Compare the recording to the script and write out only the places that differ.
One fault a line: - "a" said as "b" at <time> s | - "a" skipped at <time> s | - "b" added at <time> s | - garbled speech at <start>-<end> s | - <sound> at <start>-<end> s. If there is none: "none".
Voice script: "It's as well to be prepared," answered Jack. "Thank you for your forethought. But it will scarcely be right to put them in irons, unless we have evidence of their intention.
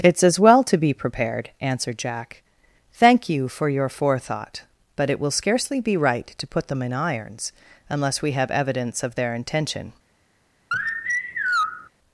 - sigh at 10.7-11.9 s